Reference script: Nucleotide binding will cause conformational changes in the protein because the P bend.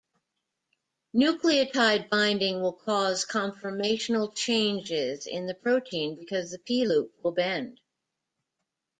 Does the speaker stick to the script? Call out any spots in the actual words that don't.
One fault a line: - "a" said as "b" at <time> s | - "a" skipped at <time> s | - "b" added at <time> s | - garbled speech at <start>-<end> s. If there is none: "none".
- "loop will" added at 6.8 s